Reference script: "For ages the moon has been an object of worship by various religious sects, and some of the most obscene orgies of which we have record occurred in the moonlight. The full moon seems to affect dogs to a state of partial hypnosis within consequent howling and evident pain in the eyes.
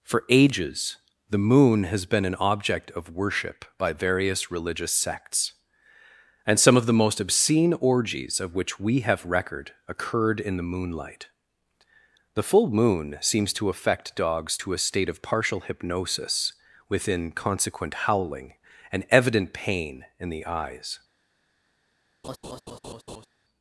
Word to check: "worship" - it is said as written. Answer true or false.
true